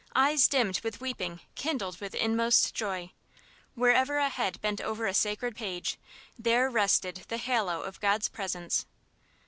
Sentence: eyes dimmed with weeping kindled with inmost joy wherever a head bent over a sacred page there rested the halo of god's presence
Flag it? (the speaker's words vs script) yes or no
no